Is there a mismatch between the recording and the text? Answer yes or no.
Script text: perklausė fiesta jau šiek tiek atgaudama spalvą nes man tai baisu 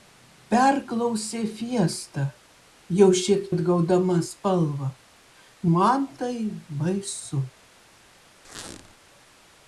yes